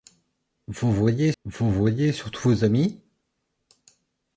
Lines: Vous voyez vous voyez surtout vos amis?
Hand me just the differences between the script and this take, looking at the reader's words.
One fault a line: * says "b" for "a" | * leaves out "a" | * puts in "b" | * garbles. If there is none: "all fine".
all fine